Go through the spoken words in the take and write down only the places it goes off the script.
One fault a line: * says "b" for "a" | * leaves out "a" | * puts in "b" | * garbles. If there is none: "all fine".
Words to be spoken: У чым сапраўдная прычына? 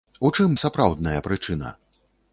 all fine